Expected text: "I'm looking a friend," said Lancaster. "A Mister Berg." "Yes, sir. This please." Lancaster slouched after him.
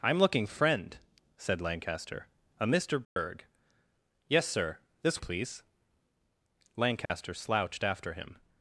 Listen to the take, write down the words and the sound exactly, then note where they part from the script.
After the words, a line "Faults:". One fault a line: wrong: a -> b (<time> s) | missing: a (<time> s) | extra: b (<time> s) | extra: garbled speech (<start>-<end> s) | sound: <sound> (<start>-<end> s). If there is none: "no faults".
"I'm looking a friend," said Lancaster. "A Mister Berg." "Yes, sir. This please." Lancaster slouched after him.
Faults:
sound: dropout (3.0-3.2 s)
sound: dropout (7.1-7.1 s)